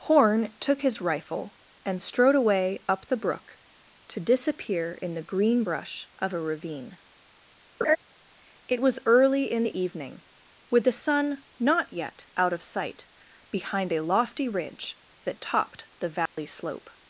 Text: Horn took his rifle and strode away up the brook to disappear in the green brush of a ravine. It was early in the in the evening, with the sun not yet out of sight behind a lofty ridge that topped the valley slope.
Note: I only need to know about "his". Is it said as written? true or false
true